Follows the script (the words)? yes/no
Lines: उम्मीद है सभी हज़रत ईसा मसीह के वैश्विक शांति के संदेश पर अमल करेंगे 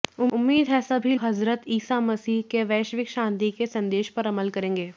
yes